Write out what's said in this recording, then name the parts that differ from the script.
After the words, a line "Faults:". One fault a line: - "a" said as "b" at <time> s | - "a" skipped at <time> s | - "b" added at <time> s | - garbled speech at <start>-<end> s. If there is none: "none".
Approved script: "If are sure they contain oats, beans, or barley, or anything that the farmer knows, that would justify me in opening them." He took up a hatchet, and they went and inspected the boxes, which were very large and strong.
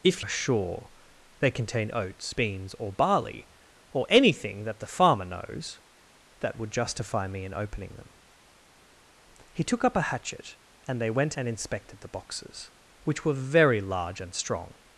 "If are sure they contain oats, beans, or barley, or anything that the farmer knows, that would justify me in opening them." He took up a hatchet, and they went and inspected the boxes, which were very large and strong.
Faults:
none